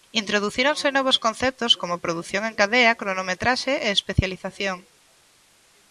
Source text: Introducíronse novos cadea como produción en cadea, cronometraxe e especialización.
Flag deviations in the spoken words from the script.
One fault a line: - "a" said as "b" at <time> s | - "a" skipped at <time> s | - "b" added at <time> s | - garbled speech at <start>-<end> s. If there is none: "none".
- "cadea" said as "conceptos" at 1.2 s